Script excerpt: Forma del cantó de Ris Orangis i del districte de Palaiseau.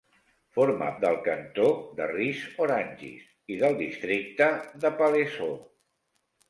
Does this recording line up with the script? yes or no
yes